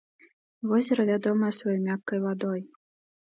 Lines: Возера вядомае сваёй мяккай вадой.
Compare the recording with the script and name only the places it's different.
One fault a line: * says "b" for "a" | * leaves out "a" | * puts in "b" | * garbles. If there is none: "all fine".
all fine